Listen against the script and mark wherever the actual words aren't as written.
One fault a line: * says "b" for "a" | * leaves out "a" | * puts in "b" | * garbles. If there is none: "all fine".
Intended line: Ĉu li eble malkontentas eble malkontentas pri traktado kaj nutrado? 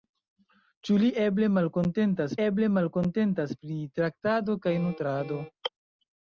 all fine